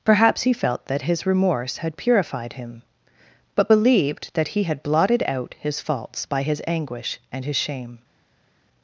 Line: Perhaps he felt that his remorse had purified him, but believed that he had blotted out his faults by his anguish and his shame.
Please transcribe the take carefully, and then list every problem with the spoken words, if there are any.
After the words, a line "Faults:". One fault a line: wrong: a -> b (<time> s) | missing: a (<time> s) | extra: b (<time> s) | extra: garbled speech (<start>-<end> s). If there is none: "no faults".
Perhaps he felt that his remorse had purified him, but believed that he had blotted out his faults by his anguish and his shame.
Faults:
no faults